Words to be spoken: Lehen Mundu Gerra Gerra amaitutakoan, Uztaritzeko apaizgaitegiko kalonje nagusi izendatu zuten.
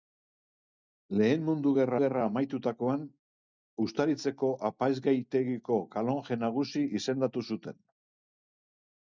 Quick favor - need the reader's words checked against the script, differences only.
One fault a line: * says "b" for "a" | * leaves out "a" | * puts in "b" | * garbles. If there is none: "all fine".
all fine